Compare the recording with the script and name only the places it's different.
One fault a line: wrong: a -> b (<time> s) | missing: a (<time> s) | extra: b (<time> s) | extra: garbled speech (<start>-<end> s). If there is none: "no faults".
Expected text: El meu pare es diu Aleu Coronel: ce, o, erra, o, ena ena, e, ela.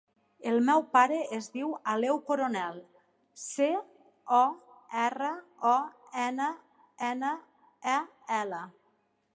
no faults